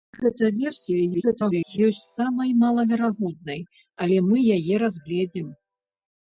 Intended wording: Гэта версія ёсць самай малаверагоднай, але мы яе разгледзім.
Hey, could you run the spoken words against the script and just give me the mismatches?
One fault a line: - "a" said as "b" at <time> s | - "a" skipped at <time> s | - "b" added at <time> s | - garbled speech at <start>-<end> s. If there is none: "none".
- garbled speech at 1.1-1.8 s